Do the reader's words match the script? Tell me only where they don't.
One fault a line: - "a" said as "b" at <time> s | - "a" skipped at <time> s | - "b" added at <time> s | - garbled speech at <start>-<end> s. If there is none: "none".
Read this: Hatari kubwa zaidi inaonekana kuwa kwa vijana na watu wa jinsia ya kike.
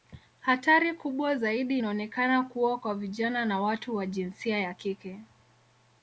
none